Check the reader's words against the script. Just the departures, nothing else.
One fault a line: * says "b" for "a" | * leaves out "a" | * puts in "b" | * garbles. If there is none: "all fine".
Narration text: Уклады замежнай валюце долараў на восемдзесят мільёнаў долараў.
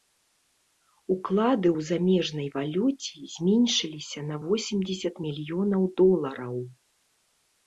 * puts in "ў"
* says "зменшыліся" for "долараў"